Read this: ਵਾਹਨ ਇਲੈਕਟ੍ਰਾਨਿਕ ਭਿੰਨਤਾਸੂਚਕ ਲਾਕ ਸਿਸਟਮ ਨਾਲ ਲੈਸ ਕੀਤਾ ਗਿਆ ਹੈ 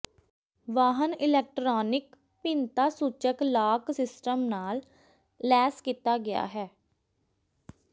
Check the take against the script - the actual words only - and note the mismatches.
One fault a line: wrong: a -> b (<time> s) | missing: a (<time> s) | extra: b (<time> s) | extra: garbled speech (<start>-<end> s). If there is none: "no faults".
no faults